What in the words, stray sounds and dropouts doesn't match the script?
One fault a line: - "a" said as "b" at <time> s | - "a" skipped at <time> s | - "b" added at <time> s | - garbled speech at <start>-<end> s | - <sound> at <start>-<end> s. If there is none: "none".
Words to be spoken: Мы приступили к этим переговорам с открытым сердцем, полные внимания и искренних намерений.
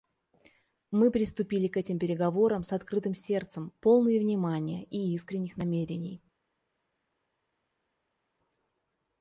none